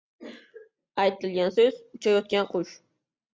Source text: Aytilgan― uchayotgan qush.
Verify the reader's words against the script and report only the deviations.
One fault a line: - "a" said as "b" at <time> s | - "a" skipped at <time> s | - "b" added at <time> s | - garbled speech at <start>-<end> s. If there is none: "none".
- "so‘z" added at 1.5 s